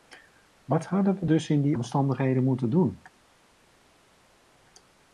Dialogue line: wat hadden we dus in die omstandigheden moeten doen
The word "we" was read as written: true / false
true